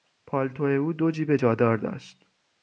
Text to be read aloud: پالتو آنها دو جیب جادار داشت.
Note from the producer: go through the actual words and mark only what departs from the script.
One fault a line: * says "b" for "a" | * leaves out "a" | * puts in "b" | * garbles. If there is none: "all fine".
* says "او" for "آنها"